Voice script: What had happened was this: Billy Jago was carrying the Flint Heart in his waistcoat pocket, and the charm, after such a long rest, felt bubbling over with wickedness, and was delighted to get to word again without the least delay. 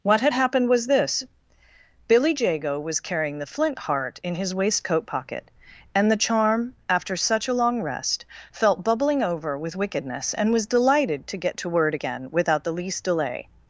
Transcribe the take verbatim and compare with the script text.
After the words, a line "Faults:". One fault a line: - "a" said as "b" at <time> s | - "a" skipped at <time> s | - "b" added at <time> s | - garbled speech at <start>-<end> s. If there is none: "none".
What had happened was this: Billy Jago was carrying the Flint Heart in his waistcoat pocket, and the charm, after such a long rest, felt bubbling over with wickedness, and was delighted to get to word again without the least delay.
Faults:
none